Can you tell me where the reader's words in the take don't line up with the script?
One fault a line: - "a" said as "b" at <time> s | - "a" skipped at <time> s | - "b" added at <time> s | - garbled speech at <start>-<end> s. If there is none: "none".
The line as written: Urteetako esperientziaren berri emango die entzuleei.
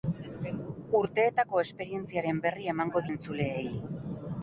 - "die" skipped at 3.0 s